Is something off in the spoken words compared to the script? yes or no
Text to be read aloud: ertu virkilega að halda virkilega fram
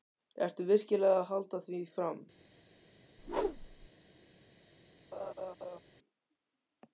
yes